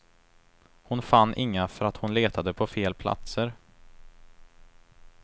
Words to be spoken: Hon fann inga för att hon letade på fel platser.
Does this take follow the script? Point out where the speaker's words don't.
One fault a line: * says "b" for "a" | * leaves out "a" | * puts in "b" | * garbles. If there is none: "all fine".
all fine